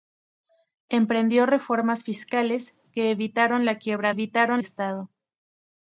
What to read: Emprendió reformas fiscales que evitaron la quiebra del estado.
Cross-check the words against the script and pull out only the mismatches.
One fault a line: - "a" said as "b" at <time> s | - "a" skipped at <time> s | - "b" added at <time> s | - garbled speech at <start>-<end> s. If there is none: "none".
- "del" said as "evitaron" at 4.1 s